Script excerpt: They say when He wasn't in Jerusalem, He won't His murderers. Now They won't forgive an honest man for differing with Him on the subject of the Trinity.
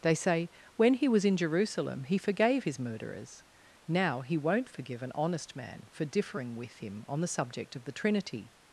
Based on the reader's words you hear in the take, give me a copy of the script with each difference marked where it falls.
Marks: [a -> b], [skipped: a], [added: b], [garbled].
They say when He [wasn't -> was] in Jerusalem, He [won't -> forgave] His murderers. Now [They -> He] won't forgive an honest man for differing with Him on the subject of the Trinity.